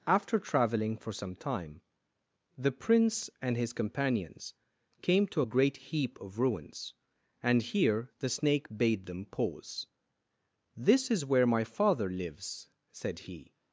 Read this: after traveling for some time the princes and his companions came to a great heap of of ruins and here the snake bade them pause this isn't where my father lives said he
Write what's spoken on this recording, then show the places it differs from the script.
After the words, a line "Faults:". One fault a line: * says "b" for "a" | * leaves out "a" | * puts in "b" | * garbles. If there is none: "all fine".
after traveling for some time the prince and his companions came to a great heap of ruins and here the snake bade them pause this is where my father lives said he
Faults:
* says "prince" for "princes"
* leaves out "of"
* says "is" for "isn't"